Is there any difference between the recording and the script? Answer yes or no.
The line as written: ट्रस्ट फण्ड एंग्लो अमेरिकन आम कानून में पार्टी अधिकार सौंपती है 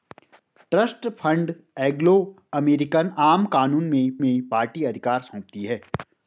yes